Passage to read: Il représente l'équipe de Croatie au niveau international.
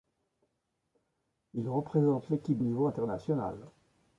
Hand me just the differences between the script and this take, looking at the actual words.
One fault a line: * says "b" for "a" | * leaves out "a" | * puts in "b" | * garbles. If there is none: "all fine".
* leaves out "de Croatie au"